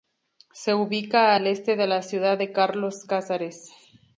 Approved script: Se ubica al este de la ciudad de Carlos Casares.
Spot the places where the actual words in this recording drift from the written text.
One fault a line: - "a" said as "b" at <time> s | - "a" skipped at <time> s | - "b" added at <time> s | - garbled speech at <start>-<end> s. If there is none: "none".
none